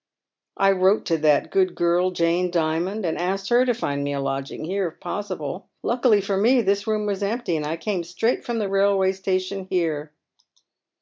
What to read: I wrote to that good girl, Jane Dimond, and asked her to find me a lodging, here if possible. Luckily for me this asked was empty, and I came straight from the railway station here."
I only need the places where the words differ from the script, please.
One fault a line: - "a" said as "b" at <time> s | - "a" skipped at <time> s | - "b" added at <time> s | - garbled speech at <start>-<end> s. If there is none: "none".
- "asked" said as "room" at 6.9 s